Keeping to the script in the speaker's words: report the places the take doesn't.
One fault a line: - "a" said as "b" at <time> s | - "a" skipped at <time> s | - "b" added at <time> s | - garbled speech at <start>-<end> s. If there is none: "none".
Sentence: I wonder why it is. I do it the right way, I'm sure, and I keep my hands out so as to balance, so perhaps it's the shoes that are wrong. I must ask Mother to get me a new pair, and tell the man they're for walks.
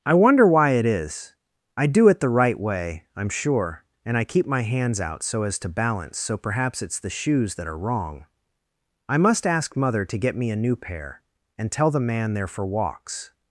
none